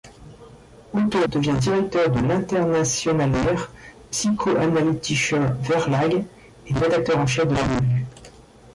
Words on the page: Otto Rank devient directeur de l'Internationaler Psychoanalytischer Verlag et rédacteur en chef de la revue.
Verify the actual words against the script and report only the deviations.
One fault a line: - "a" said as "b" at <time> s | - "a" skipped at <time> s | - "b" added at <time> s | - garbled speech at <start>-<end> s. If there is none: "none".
- "Rank" skipped at 1.2 s